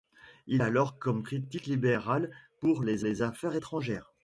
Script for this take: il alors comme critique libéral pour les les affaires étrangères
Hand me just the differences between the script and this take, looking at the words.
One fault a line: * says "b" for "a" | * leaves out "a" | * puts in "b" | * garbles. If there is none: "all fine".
all fine